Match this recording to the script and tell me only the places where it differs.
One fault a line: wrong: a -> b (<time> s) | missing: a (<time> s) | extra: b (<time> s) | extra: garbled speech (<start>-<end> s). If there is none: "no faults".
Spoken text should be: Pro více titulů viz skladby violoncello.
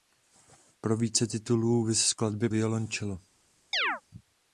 no faults